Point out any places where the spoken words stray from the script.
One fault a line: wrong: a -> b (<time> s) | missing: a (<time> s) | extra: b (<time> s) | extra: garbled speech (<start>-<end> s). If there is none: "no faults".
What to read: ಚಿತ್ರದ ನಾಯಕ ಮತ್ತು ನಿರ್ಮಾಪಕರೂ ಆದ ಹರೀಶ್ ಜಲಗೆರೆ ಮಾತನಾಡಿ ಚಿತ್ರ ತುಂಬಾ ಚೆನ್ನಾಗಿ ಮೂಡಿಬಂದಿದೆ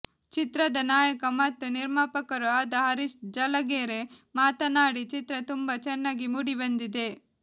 no faults